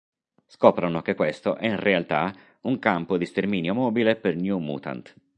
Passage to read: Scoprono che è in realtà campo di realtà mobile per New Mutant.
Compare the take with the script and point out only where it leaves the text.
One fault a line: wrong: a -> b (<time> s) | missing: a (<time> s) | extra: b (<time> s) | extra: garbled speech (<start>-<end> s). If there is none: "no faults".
extra: questo (1.1 s)
extra: un (2.6 s)
wrong: realtà -> sterminio (3.2 s)